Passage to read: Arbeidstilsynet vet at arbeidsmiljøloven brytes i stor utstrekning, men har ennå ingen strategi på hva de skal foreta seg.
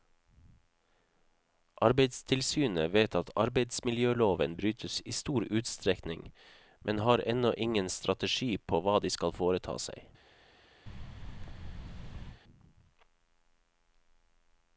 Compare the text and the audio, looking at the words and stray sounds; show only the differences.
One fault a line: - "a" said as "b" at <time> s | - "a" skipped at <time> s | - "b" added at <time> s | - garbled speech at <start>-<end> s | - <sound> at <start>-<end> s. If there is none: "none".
- thud at 10.9-12.4 s